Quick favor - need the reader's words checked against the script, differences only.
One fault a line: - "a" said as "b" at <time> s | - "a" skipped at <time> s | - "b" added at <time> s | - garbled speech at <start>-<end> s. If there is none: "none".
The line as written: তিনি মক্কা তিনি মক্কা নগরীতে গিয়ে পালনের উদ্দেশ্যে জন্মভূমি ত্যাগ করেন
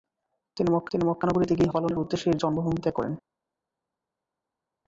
none